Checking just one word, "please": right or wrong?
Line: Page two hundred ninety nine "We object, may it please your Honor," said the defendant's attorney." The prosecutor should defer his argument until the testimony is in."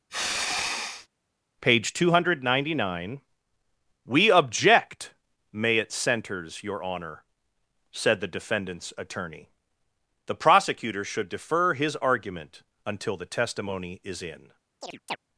wrong